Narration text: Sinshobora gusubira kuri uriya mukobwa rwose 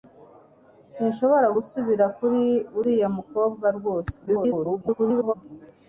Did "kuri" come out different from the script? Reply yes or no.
no